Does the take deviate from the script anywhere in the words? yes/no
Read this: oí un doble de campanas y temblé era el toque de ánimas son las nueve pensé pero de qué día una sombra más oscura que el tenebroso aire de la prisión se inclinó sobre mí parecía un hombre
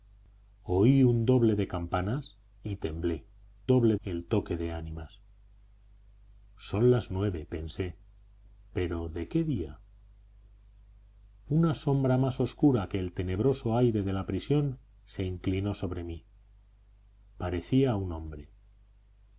yes